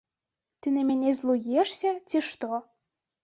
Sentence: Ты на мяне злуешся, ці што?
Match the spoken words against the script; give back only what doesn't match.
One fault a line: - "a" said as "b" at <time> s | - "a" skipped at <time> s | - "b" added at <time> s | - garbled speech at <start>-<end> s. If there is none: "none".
none